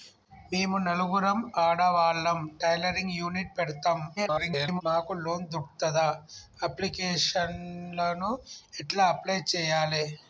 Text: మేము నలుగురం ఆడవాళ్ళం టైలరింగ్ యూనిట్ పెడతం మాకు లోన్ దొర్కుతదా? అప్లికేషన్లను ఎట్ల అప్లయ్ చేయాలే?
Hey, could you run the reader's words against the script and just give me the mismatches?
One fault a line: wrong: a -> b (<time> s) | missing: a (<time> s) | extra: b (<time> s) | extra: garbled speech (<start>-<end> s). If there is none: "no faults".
extra: garbled speech (4.2-4.8 s)